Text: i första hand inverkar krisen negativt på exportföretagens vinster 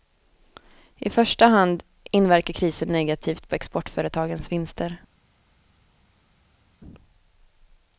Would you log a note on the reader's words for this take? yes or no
no